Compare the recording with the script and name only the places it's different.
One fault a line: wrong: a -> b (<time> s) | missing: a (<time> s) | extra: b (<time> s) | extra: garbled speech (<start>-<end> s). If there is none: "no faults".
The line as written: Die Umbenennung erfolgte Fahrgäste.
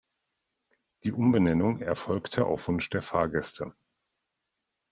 extra: auf Wunsch der (2.5 s)